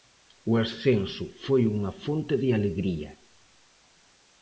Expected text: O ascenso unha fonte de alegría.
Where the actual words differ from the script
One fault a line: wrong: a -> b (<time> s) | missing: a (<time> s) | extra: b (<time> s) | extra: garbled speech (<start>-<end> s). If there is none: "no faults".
extra: foi (1.4 s)